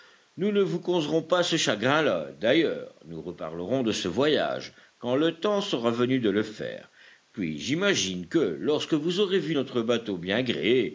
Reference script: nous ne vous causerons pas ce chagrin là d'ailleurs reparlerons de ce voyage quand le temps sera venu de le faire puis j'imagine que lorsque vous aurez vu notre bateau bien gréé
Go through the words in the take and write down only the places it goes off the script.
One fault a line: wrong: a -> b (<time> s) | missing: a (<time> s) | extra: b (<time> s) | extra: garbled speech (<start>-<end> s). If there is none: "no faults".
extra: nous (3.0 s)